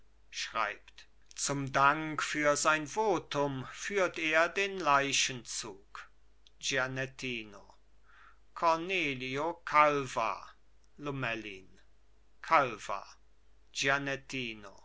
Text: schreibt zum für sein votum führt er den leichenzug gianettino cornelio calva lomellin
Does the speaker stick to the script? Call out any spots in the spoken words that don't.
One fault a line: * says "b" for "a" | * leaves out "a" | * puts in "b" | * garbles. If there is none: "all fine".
* puts in "dank"